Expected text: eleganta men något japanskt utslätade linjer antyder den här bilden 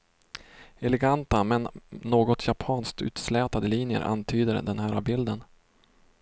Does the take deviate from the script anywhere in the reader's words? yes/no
no